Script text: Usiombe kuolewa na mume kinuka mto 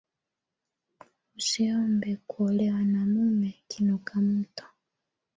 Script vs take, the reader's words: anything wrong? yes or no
no